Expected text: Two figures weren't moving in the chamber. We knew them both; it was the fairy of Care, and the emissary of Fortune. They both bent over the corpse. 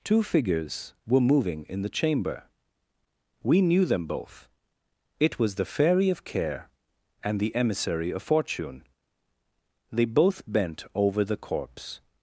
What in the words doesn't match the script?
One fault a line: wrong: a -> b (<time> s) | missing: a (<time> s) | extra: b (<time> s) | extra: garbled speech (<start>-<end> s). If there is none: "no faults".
wrong: weren't -> were (1.1 s)